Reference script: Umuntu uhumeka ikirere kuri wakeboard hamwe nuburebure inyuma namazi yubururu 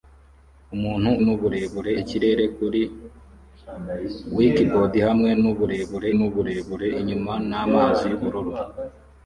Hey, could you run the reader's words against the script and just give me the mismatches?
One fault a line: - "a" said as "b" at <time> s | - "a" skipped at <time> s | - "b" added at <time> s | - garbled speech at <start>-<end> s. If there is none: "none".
- "uhumeka" said as "nuburebure" at 1.2 s
- "nuburebure" added at 6.2 s